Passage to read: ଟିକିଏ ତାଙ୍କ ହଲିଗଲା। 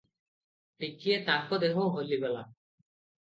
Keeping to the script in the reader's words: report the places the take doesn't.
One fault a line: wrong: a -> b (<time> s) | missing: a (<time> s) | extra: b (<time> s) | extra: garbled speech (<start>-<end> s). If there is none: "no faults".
extra: ଦେହ (1.6 s)